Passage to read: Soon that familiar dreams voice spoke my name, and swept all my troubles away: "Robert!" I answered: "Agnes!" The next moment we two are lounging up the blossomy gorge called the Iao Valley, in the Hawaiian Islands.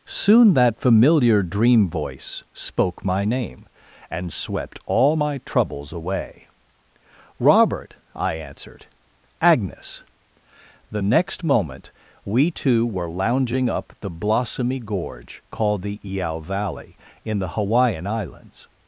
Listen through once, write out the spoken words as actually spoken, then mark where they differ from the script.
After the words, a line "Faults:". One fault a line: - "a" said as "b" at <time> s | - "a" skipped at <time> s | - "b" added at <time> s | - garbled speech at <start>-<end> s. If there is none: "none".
Soon that familiar dream voice spoke my name, and swept all my troubles away: "Robert!" I answered: "Agnes!" The next moment we two were lounging up the blossomy gorge called the Iao Valley, in the Hawaiian Islands.
Faults:
- "dreams" said as "dream" at 1.4 s
- "are" said as "were" at 12.9 s